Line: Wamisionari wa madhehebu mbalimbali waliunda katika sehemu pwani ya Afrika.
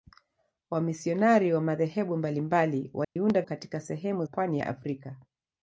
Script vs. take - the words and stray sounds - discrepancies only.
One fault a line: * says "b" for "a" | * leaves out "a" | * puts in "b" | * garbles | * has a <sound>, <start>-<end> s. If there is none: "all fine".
* has a dropout, 3.0-3.2 s